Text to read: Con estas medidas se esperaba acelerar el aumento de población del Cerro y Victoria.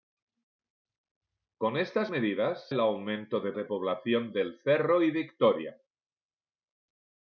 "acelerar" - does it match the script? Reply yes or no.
no